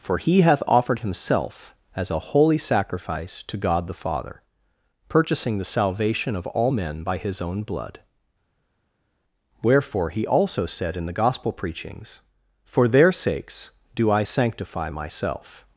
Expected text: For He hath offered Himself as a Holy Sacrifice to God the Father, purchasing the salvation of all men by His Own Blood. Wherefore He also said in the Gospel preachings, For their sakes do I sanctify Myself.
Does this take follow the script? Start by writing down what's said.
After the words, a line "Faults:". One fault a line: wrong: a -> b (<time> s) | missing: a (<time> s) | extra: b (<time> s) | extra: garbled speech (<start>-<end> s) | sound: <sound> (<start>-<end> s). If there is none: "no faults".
For He hath offered Himself as a Holy Sacrifice to God the Father, purchasing the salvation of all men by His Own Blood. Wherefore He also said in the Gospel preachings, For their sakes do I sanctify Myself.
Faults:
no faults